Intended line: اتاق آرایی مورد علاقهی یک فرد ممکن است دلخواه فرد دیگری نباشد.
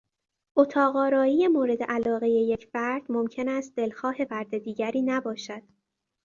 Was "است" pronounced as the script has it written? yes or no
yes